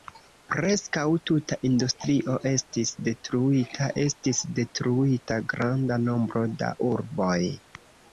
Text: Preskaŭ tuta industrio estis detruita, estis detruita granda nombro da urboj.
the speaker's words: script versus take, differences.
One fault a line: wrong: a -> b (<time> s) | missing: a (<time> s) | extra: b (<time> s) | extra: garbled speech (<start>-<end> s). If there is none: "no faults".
no faults